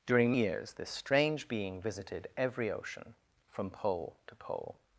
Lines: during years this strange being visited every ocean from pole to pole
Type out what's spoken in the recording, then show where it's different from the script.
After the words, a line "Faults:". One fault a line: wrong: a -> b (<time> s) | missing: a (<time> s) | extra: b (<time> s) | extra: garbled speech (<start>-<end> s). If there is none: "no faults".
during years this strange being visited every ocean from pole to pole
Faults:
no faults